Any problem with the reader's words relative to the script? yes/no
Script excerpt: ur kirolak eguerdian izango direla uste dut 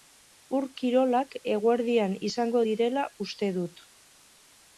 no